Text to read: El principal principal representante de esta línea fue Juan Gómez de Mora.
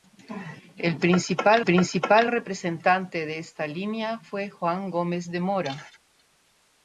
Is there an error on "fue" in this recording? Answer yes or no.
no